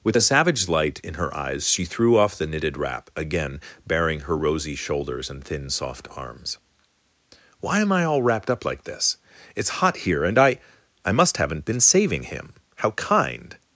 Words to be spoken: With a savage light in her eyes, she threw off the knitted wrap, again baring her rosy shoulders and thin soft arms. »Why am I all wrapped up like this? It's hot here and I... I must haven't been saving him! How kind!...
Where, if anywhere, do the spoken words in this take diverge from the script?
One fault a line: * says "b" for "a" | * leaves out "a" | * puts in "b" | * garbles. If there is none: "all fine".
all fine